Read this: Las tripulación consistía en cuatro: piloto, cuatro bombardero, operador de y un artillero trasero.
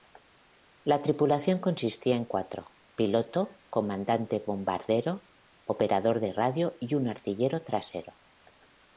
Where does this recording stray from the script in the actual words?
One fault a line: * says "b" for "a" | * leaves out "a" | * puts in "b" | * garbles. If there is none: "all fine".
* says "La" for "Las"
* says "comandante" for "cuatro"
* puts in "radio"